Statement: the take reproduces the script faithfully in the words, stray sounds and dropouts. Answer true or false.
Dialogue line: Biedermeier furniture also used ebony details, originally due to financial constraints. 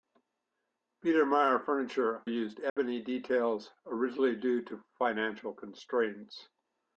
false